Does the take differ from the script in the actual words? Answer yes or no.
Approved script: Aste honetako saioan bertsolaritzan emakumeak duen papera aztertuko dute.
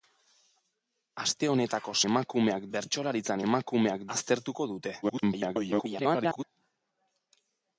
yes